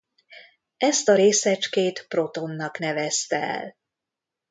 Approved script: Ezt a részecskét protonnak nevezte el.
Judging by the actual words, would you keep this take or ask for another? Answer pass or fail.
pass